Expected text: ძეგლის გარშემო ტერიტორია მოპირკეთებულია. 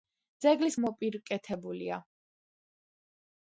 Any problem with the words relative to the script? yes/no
yes